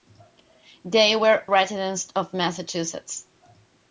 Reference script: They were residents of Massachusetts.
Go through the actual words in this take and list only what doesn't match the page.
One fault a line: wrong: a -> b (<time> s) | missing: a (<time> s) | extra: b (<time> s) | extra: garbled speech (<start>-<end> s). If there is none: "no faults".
no faults